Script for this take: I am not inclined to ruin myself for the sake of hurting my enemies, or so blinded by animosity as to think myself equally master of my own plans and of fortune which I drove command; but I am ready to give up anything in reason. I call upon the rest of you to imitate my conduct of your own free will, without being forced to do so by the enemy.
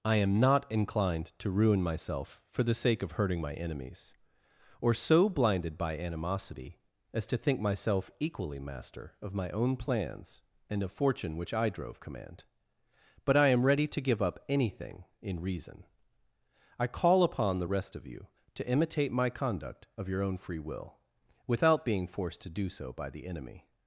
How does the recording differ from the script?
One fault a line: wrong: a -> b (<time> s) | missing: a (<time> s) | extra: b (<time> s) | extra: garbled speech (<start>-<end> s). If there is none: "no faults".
no faults